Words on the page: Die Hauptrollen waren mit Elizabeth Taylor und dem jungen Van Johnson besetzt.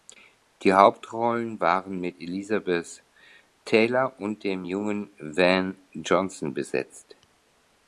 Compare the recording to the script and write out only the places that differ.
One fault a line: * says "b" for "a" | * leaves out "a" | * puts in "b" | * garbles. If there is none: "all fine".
all fine